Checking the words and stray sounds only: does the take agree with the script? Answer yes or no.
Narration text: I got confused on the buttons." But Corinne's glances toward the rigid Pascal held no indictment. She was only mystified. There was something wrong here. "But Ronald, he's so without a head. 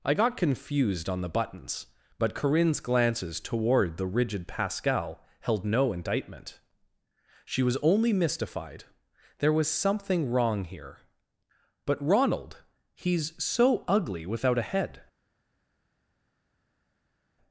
no